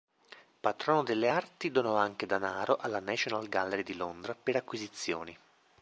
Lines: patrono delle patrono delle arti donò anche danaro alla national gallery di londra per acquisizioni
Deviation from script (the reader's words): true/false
true